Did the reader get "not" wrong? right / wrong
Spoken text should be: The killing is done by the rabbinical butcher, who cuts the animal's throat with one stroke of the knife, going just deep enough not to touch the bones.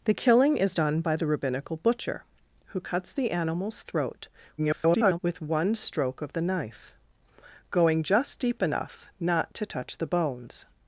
right